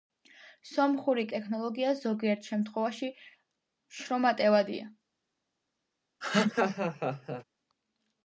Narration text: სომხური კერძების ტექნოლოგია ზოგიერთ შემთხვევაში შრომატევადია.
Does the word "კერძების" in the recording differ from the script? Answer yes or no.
yes